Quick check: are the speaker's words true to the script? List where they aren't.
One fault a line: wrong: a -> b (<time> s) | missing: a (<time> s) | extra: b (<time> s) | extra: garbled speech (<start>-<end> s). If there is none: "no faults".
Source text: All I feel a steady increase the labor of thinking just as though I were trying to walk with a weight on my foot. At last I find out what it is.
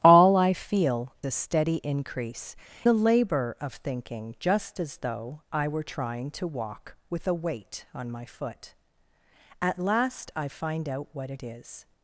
no faults